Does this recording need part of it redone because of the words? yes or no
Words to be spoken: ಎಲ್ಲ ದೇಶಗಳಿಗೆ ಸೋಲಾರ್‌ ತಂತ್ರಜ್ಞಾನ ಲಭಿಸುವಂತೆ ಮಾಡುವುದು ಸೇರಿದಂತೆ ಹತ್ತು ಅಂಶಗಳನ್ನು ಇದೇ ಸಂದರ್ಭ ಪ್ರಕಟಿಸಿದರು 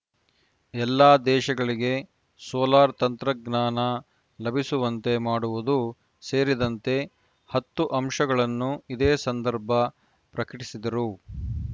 no